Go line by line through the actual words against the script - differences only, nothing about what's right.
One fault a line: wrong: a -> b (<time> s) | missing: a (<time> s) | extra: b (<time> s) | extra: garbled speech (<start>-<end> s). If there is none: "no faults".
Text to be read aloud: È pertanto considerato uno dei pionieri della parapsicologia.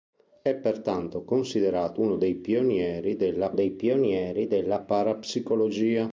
extra: dei pionieri della (3.5 s)